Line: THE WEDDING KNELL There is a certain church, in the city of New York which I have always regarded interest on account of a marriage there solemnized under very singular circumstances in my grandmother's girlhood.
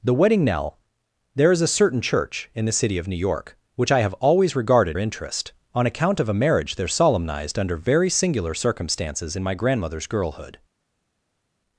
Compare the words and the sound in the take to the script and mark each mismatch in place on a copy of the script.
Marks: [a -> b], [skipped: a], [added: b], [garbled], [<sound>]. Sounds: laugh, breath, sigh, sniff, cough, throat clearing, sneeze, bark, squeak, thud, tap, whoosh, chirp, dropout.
THE WEDDING KNELL There is a certain church, in the city of New York which I have always regarded interest on account of a marriage there solemnized under very singular circumstances in my grandmother's girlhood.